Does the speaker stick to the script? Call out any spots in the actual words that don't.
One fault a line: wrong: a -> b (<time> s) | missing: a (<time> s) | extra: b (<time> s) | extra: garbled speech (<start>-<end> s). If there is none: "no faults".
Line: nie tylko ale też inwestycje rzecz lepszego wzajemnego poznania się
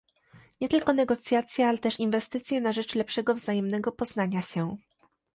extra: negocjacje (0.9 s)
extra: na (2.6 s)